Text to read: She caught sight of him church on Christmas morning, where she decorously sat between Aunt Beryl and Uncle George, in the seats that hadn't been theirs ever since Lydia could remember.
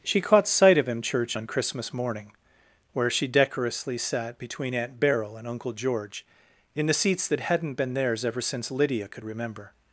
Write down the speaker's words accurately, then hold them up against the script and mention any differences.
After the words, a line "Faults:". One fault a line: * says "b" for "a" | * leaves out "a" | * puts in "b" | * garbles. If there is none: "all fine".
She caught sight of him church on Christmas morning, where she decorously sat between Aunt Beryl and Uncle George, in the seats that hadn't been theirs ever since Lydia could remember.
Faults:
all fine